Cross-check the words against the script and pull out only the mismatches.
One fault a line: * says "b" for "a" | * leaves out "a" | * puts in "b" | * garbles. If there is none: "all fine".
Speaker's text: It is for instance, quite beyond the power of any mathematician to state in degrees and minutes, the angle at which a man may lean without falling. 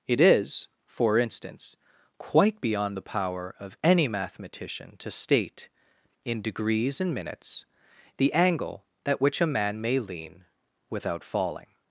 all fine